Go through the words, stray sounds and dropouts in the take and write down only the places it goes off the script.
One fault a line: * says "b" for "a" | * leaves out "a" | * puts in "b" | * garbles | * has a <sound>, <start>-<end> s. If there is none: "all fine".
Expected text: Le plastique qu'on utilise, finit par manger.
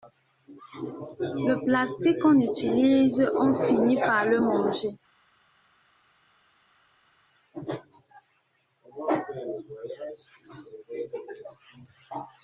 * puts in "on"
* puts in "le"